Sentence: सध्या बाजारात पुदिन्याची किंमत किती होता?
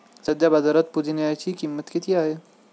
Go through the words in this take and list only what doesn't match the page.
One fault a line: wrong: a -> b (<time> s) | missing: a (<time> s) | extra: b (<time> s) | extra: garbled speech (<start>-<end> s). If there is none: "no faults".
wrong: होता -> आहे (2.1 s)